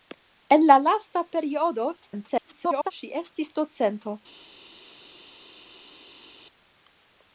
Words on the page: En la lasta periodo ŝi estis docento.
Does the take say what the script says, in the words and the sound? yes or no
no